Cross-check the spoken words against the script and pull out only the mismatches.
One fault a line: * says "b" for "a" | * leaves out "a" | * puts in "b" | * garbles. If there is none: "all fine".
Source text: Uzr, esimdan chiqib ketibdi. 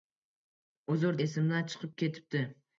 all fine